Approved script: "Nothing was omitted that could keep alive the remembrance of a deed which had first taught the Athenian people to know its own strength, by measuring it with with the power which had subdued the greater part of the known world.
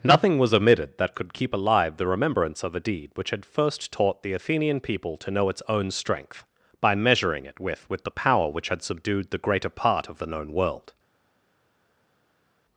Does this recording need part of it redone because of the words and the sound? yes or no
no